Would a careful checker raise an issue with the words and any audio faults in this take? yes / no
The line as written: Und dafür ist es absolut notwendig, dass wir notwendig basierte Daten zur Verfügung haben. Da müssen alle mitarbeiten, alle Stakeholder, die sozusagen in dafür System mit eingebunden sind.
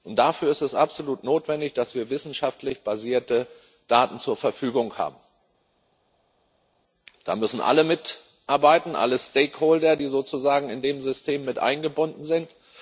yes